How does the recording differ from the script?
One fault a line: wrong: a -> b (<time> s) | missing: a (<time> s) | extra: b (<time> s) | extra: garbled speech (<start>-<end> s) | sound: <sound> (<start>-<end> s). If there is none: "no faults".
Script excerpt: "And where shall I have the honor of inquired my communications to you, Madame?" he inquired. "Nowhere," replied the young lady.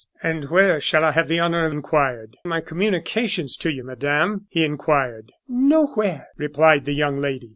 no faults